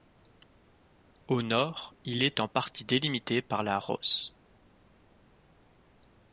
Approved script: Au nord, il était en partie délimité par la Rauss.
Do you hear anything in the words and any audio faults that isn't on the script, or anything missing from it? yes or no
yes